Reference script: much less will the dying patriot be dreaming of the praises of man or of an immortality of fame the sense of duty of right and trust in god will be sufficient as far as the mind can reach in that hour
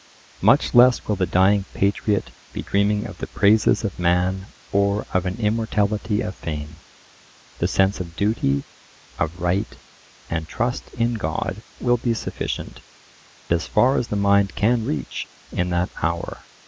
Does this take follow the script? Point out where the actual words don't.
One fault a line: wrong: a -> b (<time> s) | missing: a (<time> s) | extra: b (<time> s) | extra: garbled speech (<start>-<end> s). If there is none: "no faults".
no faults